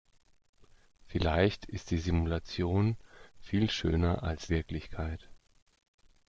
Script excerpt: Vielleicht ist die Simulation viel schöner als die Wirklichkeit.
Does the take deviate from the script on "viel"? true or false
false